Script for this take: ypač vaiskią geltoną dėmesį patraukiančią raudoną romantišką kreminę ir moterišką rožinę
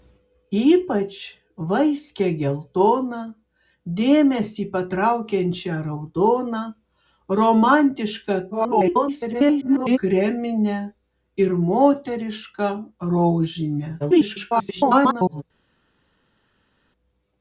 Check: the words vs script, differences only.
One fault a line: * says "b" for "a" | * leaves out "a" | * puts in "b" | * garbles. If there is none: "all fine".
* garbles
* garbles